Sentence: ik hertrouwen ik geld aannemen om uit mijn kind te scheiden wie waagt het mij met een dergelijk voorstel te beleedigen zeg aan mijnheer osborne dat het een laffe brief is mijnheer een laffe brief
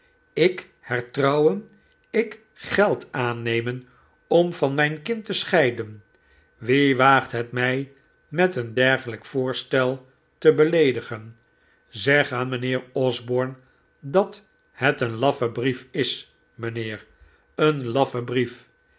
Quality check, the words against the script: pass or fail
fail